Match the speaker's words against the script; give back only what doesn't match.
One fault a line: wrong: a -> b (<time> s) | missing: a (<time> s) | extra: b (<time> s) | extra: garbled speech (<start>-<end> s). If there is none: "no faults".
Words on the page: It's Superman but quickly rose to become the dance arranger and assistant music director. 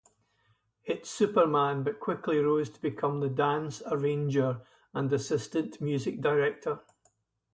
no faults